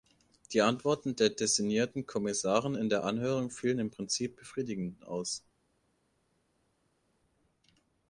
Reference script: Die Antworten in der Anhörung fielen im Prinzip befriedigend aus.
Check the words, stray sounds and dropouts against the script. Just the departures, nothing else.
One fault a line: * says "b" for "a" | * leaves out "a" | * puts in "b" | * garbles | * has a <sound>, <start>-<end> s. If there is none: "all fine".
* puts in "der designierten Kommissarin"